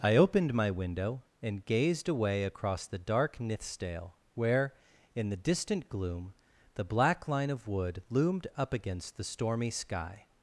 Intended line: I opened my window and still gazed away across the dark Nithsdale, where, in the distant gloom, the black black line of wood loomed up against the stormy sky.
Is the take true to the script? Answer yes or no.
no